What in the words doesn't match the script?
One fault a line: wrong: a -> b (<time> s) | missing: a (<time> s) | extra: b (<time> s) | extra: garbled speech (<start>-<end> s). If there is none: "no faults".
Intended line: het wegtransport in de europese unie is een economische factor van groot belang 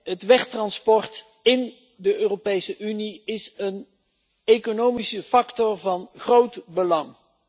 no faults